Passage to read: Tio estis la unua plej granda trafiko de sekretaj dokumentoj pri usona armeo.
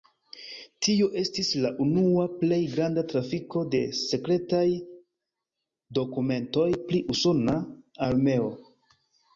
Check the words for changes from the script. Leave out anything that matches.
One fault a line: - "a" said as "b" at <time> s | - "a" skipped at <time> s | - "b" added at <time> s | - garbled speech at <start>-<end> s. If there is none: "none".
none